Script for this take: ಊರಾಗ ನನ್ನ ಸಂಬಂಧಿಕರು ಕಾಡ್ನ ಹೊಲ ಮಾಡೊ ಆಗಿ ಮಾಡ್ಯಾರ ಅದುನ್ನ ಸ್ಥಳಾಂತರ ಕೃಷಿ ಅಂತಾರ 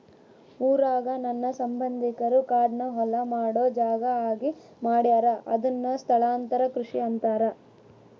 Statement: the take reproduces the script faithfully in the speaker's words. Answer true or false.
false